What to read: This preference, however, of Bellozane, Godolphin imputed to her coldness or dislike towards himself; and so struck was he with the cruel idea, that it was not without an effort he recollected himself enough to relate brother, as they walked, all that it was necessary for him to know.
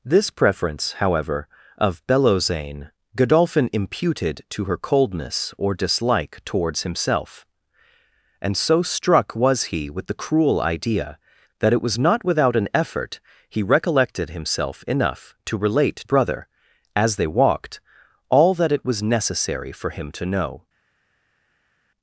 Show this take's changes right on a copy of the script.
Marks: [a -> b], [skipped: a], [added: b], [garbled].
This preference, however, of Bellozane, Godolphin imputed to her coldness or dislike towards himself; and so struck was he with the cruel idea, that it was not without an effort he recollected himself enough to relate brother, as they walked, all that it was necessary for him to know.